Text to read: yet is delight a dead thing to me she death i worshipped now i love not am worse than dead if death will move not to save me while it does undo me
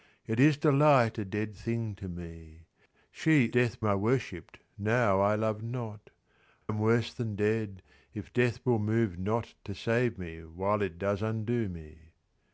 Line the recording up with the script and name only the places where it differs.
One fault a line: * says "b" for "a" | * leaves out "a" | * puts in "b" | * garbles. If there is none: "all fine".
all fine